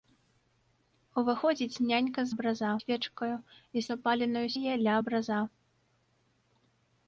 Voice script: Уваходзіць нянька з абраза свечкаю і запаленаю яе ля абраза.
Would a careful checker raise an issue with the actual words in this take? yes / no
no